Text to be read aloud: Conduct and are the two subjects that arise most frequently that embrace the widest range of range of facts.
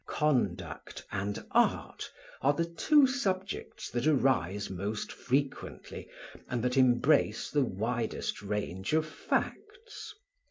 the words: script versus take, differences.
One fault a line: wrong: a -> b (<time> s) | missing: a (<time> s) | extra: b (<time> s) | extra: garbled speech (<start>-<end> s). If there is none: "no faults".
extra: art (1.5 s)
extra: and (6.5 s)
missing: range of (9.1 s)